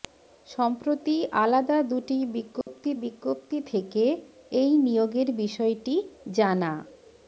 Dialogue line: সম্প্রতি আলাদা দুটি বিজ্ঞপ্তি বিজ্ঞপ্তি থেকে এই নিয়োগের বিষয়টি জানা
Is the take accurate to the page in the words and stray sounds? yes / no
no